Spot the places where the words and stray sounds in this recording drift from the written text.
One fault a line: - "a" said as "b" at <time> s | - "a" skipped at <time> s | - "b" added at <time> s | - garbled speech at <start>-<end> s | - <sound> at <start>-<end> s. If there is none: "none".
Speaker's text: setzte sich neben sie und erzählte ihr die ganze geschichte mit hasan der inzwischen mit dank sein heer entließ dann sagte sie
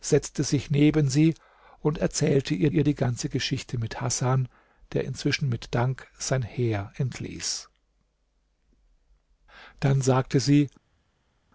- "ihr" added at 2.7 s